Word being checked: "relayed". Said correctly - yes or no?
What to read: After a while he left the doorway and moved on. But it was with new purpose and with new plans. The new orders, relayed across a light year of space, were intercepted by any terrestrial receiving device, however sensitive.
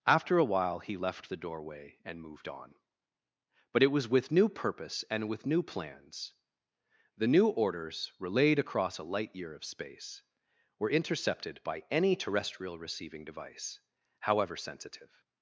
yes